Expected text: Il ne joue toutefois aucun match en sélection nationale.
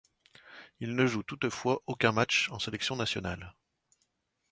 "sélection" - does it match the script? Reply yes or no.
yes